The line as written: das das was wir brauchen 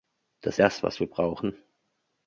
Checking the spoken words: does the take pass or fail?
pass